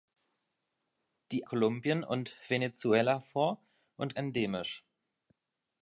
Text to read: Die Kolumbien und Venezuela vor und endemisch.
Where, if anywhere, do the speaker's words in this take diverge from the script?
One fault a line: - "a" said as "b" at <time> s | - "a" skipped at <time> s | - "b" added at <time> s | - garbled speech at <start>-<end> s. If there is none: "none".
none